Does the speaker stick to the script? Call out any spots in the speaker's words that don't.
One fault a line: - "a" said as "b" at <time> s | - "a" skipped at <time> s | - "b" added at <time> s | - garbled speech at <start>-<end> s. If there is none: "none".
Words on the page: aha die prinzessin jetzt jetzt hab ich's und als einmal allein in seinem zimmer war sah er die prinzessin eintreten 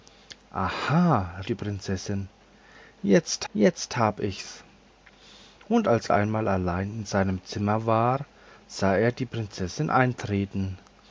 none